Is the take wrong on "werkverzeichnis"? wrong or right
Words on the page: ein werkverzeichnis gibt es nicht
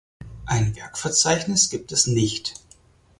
right